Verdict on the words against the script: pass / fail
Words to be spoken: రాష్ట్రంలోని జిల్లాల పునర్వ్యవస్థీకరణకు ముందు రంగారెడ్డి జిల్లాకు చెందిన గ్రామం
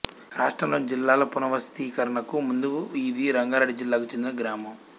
fail